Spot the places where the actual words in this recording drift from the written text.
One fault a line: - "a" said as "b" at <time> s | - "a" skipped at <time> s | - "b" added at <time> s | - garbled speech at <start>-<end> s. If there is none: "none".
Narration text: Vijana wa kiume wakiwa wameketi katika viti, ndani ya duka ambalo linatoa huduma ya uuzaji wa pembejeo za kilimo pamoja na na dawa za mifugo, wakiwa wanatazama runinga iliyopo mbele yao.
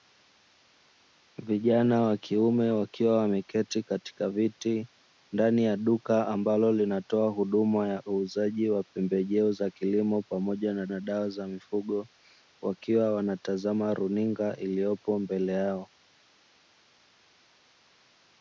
none